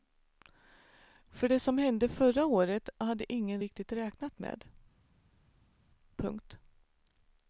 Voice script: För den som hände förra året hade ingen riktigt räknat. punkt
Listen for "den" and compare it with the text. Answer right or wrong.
wrong